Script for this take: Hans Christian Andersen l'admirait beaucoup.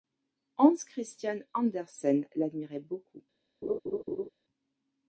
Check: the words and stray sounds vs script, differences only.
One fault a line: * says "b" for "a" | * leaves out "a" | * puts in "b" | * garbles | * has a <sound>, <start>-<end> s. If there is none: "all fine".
* has a laugh, 3.6-4.3 s